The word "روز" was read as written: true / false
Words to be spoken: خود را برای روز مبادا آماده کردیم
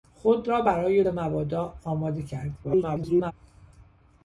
false